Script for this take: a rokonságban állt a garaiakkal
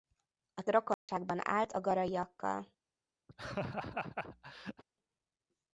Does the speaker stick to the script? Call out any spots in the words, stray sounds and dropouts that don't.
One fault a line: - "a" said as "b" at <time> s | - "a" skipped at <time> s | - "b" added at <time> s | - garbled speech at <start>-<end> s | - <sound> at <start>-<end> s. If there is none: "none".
- dropout at 0.9-1.1 s
- laugh at 3.3-4.8 s